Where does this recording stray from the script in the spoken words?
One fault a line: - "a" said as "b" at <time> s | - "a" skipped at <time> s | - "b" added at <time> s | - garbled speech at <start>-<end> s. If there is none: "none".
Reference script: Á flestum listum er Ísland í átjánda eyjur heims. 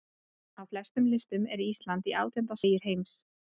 none